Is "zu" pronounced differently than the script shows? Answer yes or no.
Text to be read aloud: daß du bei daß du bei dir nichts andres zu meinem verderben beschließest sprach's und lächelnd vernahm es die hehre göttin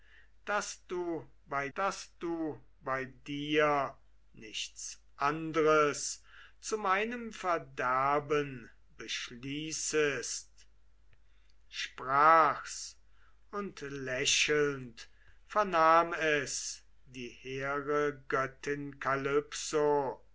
no